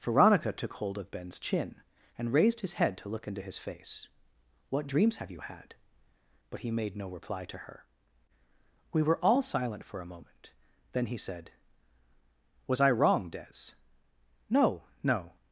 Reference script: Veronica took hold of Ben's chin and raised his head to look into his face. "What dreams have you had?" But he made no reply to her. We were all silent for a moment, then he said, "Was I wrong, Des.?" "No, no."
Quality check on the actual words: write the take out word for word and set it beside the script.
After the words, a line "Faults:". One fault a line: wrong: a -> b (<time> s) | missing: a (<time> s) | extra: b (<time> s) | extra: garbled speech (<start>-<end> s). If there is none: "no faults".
Veronica took hold of Ben's chin and raised his head to look into his face. "What dreams have you had?" But he made no reply to her. We were all silent for a moment, then he said, "Was I wrong, Des.?" "No, no."
Faults:
no faults